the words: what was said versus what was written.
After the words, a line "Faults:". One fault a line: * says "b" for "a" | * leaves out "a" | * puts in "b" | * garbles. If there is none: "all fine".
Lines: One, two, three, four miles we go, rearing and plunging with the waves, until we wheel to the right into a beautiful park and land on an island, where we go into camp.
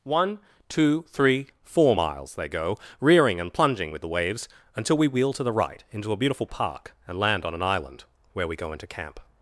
One, two, three, four miles they go, rearing and plunging with the waves, until we wheel to the right into a beautiful park and land on an island, where we go into camp.
Faults:
* says "they" for "we"